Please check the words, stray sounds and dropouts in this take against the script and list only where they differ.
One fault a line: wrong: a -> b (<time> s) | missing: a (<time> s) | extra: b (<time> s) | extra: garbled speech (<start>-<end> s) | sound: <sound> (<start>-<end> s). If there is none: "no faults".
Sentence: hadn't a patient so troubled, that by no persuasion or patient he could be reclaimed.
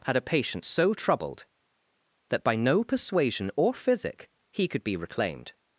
wrong: hadn't -> had (0.1 s)
wrong: patient -> physic (3.7 s)